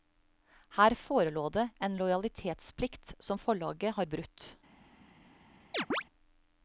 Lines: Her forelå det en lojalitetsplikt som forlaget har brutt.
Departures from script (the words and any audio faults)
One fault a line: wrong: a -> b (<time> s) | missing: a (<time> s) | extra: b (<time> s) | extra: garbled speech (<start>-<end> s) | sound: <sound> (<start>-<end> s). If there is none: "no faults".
sound: chirp (5.7-6.0 s)